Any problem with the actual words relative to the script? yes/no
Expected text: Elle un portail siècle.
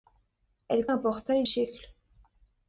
no